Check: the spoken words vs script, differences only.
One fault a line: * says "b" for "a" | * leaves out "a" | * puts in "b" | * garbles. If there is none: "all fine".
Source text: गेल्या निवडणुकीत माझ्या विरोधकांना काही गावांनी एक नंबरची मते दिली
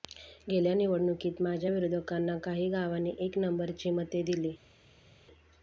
all fine